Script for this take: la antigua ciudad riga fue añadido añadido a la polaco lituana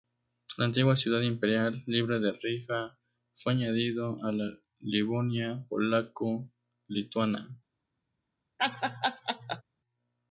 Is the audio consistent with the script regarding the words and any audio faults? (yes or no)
no